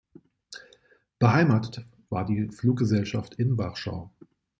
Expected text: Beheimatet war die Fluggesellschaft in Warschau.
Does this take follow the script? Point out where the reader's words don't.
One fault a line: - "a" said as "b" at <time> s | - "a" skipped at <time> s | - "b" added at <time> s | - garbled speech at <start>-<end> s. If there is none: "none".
none